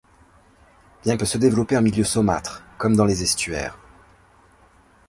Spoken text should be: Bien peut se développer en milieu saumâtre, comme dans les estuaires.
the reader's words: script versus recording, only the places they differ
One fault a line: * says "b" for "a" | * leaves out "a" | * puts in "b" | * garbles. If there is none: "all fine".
all fine